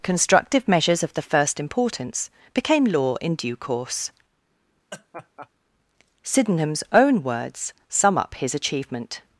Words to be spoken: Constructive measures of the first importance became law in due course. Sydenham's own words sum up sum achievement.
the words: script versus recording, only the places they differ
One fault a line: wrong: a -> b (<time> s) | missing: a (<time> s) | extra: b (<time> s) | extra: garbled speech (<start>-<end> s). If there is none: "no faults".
wrong: sum -> his (8.3 s)